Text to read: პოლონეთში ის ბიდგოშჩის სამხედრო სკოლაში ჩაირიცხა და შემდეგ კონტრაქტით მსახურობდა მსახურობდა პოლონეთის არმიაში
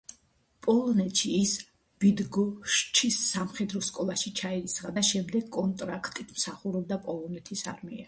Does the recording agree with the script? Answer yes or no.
no